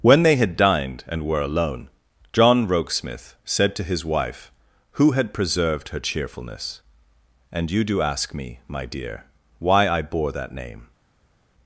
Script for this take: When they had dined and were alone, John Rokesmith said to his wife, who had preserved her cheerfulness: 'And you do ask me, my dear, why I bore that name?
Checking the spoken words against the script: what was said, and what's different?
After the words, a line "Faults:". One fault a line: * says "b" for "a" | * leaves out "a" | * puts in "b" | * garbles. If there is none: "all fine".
When they had dined and were alone, John Rokesmith said to his wife, who had preserved her cheerfulness: 'And you do ask me, my dear, why I bore that name?
Faults:
all fine